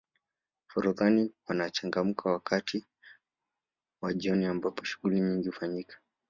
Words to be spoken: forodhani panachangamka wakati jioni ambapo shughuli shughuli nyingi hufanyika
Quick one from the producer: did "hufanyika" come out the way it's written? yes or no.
yes